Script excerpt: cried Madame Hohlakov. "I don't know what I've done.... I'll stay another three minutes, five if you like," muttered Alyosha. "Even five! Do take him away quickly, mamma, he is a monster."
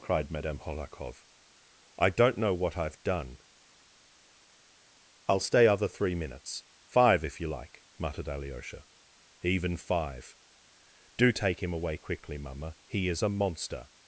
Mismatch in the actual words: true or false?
true